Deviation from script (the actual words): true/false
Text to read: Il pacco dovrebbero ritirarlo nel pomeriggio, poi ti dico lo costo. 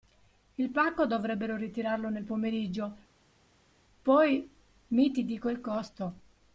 true